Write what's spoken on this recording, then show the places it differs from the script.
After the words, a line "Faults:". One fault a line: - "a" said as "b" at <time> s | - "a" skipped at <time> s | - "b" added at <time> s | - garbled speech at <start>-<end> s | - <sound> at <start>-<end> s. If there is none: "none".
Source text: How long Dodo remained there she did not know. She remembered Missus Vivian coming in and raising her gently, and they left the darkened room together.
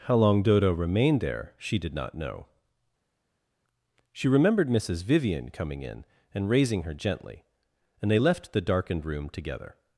How long Dodo remained there she did not know. She remembered Missus Vivian coming in and raising her gently, and they left the darkened room together.
Faults:
none